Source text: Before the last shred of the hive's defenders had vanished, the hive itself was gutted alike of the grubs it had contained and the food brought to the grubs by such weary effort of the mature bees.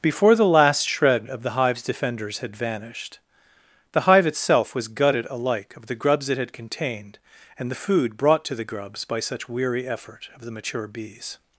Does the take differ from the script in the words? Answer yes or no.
no